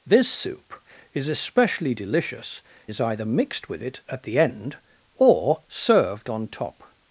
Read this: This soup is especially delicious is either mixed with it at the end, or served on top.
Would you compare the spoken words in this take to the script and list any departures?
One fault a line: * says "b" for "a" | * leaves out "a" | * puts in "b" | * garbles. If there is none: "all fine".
all fine